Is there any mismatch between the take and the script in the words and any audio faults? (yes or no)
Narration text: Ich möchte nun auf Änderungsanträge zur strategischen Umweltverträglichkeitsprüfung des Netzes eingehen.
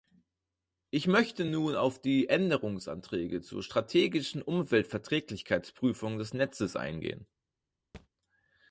yes